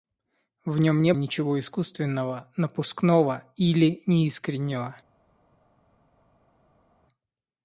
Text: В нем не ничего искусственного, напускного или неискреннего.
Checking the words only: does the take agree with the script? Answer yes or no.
yes